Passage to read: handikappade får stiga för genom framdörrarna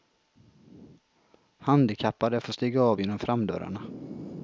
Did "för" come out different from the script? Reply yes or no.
yes